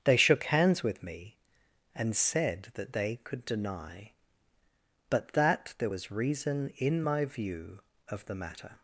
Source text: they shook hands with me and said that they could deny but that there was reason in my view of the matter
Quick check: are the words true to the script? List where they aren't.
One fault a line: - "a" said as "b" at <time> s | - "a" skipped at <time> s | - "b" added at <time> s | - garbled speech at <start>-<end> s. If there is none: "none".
none